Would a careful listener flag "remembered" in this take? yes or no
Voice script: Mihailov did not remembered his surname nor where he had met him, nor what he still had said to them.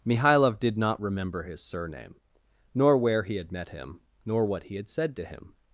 yes